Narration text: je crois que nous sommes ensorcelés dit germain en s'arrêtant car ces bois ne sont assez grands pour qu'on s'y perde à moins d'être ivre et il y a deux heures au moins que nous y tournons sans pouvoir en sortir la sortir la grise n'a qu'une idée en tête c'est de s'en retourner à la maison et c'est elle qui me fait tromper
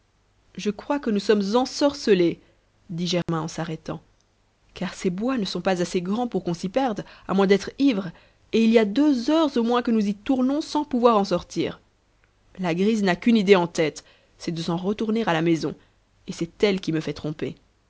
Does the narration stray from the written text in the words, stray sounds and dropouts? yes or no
yes